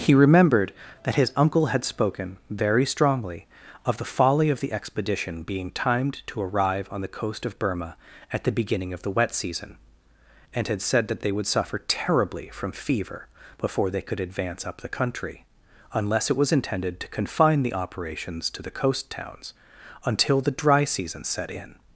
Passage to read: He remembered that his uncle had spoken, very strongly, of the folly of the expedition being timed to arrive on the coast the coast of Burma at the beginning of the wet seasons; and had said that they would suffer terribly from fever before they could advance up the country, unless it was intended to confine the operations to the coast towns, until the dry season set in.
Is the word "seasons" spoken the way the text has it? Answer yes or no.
no